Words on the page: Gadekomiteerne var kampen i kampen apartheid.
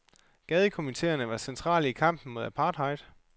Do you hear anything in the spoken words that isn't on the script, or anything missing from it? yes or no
yes